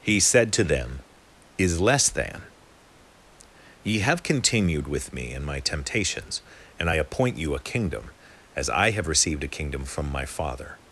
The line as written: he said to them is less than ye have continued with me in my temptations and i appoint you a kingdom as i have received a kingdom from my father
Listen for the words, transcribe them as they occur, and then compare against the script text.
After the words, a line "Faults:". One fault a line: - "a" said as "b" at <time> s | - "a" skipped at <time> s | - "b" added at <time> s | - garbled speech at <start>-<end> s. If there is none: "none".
he said to them is less than ye have continued with me in my temptations and i appoint you a kingdom as i have received a kingdom from my father
Faults:
none